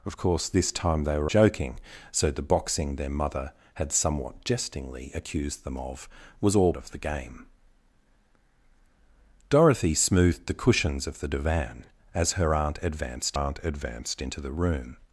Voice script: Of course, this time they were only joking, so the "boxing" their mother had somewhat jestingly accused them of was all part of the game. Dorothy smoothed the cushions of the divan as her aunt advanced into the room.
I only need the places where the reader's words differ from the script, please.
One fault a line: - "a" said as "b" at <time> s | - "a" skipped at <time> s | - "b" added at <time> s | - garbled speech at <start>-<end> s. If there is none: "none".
- "only" skipped at 1.3 s
- "part" skipped at 6.7 s
- "aunt advanced" added at 13.3 s